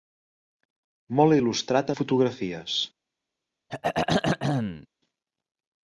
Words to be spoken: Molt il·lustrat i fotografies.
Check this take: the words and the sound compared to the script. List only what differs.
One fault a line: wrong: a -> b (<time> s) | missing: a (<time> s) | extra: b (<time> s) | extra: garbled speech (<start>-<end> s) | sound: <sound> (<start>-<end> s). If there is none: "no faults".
sound: throat clearing (3.7-4.9 s)